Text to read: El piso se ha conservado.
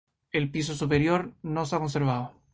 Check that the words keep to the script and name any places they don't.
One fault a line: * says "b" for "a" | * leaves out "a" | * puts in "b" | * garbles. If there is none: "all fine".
* puts in "superior no"